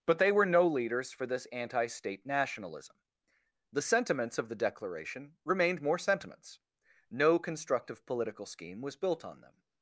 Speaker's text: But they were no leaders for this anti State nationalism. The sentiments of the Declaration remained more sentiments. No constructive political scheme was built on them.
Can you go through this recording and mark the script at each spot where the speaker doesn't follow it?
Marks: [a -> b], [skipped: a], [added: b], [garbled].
But they were no leaders for this anti State nationalism. The sentiments of the Declaration remained more sentiments. No constructive political scheme was built on them.